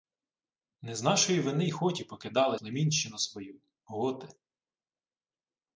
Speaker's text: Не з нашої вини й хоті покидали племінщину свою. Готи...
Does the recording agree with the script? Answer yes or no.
yes